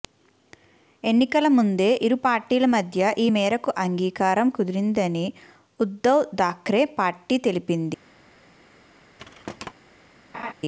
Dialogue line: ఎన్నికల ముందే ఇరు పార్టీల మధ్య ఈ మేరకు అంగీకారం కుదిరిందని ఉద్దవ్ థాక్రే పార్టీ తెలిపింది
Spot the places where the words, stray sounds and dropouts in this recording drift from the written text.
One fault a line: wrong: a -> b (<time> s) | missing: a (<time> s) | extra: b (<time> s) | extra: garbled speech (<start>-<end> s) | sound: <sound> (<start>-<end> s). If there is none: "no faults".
sound: thud (9.2-9.7 s)
sound: laugh (10.3-10.5 s)